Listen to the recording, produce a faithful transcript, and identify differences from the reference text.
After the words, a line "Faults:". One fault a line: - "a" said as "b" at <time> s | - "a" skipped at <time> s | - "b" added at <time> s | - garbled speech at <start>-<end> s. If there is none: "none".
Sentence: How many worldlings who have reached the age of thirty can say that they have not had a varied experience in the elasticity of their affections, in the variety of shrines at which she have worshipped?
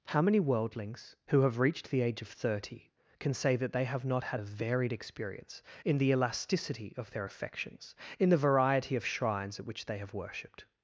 How many worldlings who have reached the age of thirty can say that they have not had a varied experience in the elasticity of their affections, in the variety of shrines at which they have worshipped?
Faults:
- "she" said as "they" at 9.8 s